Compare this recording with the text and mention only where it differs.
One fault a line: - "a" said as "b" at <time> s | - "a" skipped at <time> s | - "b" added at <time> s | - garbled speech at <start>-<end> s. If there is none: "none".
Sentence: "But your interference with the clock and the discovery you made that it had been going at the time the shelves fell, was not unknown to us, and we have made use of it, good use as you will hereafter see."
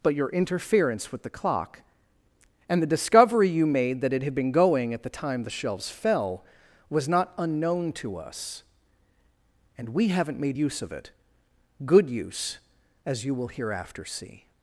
- "have" said as "haven't" at 10.1 s